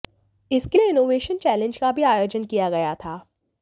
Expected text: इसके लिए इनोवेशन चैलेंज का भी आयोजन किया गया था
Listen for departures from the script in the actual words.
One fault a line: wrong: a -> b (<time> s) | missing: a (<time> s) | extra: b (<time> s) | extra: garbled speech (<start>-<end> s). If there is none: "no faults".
no faults